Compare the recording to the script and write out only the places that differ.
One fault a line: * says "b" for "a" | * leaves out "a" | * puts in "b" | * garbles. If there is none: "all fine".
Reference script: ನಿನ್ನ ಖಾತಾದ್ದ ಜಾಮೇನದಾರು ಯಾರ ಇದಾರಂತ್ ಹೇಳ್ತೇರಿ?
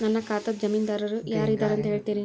* says "ನನ್ನ" for "ನಿನ್ನ"